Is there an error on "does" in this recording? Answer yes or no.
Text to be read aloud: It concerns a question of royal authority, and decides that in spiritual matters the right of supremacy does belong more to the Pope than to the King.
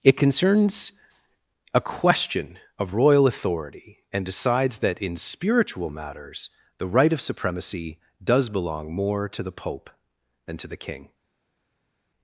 no